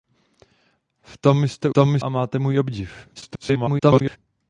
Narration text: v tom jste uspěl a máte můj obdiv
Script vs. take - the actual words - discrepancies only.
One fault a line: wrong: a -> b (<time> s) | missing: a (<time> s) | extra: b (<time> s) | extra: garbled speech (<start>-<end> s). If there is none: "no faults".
wrong: uspěl -> tom (1.7 s)
extra: garbled speech (3.1-4.2 s)